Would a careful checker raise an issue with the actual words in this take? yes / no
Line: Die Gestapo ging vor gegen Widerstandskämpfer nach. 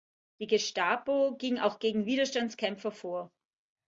yes